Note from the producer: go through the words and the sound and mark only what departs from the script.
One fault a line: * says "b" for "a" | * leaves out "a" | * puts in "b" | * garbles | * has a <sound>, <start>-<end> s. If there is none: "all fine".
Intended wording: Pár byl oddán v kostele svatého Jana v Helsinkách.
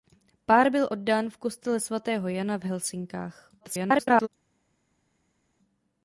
* garbles